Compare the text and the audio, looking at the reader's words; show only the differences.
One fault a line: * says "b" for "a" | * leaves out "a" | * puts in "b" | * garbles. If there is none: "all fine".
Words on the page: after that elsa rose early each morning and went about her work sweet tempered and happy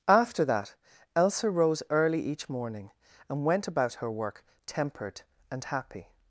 * leaves out "sweet"